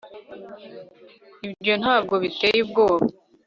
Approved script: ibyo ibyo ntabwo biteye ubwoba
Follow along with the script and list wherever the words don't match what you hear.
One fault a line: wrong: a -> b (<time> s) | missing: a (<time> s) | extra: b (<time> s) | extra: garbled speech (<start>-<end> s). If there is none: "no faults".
missing: ibyo (1.7 s)